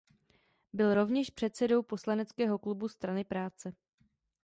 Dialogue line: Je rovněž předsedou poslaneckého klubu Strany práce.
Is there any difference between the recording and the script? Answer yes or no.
yes